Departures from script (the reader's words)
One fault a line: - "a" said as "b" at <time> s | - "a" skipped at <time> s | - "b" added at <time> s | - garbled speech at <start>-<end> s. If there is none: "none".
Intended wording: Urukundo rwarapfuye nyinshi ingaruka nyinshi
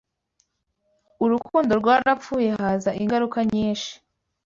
- "nyinshi" said as "haza" at 2.6 s